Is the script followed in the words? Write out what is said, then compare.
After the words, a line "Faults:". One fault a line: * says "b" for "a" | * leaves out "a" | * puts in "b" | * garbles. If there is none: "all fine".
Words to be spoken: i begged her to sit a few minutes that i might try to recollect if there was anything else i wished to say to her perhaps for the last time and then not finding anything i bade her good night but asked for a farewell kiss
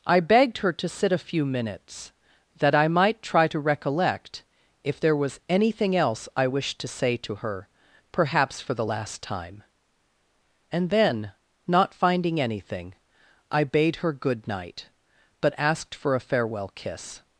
i begged her to sit a few minutes that i might try to recollect if there was anything else i wished to say to her perhaps for the last time and then not finding anything i bade her good night but asked for a farewell kiss
Faults:
all fine